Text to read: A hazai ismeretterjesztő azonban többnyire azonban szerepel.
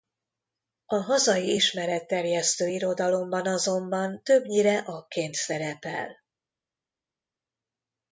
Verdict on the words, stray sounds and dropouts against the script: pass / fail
fail